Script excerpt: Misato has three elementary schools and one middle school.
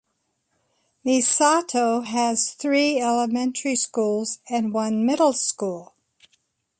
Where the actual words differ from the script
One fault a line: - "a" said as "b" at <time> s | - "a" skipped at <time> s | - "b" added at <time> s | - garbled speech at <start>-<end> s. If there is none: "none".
none